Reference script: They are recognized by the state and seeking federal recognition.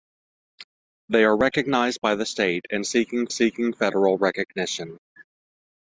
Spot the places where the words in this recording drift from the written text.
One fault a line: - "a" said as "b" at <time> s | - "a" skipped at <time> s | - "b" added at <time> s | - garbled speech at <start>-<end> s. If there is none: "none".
- "seeking" added at 3.3 s